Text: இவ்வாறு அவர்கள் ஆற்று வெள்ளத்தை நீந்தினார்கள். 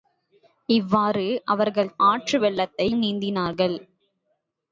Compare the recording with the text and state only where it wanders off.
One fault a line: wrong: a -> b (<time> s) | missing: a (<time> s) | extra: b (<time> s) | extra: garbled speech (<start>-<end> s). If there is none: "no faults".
no faults